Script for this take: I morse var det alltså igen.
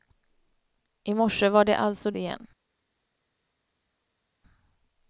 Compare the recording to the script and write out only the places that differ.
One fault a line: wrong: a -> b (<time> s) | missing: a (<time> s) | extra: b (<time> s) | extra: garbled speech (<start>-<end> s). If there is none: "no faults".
no faults